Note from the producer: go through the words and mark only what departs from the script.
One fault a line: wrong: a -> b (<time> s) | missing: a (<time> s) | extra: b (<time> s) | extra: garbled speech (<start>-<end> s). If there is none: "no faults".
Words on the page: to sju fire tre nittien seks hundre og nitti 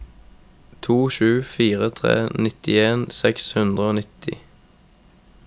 no faults